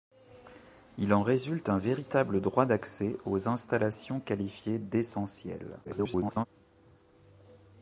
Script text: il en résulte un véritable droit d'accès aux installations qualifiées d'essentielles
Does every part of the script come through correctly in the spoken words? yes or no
no